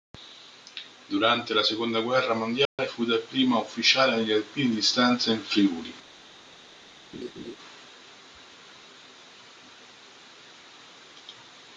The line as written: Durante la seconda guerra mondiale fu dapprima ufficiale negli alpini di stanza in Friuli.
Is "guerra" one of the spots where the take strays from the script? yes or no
no